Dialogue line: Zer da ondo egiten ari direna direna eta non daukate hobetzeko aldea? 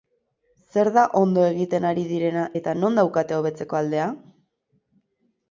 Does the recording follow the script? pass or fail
fail